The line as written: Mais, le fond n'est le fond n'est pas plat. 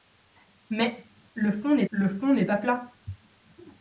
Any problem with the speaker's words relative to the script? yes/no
no